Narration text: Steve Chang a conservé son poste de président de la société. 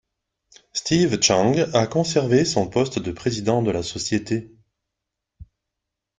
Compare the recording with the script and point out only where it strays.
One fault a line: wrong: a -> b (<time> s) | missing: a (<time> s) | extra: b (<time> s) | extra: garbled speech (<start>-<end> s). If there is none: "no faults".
no faults